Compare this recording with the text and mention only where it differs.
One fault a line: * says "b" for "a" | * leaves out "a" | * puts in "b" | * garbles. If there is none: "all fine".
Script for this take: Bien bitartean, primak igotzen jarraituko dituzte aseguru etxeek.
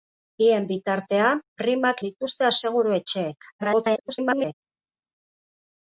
* leaves out "igotzen jarraituko"
* garbles